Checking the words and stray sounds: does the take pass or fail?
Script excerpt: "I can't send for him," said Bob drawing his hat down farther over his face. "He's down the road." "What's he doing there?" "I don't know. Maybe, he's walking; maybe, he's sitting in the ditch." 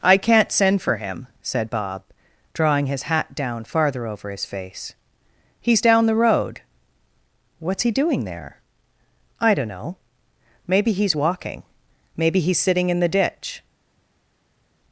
pass